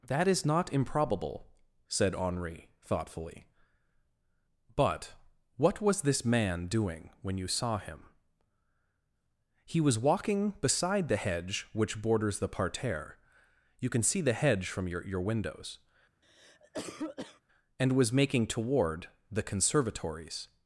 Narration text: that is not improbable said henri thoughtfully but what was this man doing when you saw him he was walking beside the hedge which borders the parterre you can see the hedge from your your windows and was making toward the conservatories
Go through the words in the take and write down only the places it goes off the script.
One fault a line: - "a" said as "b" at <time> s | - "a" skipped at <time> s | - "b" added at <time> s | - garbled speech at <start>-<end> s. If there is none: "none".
none